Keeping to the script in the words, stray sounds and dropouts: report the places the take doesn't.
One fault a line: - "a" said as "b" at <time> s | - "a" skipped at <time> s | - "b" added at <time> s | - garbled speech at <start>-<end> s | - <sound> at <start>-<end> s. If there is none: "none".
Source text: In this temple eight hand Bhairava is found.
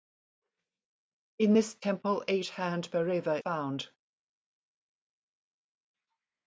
- "is" skipped at 3.4 s